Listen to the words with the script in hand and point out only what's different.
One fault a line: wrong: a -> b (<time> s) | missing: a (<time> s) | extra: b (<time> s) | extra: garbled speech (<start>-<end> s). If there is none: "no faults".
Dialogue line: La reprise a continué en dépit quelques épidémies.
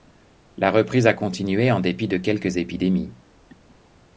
extra: de (2.1 s)